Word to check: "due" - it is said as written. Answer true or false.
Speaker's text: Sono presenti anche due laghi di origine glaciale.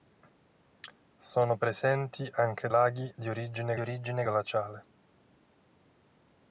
false